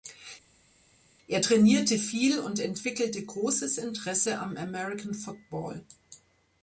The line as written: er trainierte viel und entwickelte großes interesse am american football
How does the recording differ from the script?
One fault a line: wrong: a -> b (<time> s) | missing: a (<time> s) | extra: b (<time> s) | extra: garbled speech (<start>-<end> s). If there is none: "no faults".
no faults